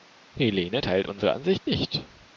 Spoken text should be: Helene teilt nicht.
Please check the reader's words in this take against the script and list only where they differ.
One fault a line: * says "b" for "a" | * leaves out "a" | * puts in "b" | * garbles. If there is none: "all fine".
* puts in "unsere Ansicht"